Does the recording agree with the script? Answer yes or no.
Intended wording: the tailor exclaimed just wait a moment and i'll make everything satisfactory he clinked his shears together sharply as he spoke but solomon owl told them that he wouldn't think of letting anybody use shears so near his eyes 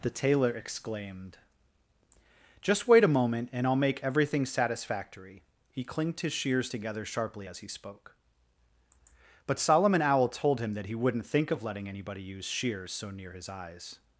no